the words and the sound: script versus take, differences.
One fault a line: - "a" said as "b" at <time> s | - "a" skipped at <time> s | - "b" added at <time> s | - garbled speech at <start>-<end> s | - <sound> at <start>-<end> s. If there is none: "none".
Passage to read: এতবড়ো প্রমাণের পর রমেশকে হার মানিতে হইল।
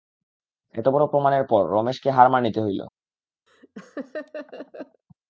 - laugh at 3.5-5.0 s